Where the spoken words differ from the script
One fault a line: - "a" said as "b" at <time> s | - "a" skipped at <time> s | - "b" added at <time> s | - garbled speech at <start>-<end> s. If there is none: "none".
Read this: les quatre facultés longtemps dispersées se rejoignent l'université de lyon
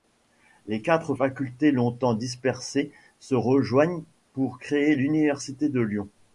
- "pour créer" added at 4.3 s